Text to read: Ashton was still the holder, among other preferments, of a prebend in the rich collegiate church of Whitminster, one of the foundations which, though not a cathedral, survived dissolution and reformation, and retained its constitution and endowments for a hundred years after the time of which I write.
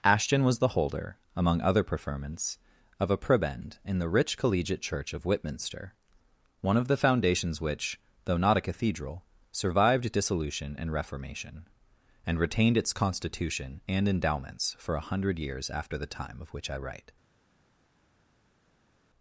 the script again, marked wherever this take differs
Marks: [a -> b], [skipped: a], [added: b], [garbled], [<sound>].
Ashton was [skipped: still] the holder, among other preferments, of a prebend in the rich collegiate church of Whitminster, one of the foundations which, though not a cathedral, survived dissolution and reformation, and retained its constitution and endowments for a hundred years after the time of which I write.